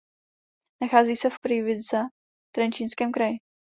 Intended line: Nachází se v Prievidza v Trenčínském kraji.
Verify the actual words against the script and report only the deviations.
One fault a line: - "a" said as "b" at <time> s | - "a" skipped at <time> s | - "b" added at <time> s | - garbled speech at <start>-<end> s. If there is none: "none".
none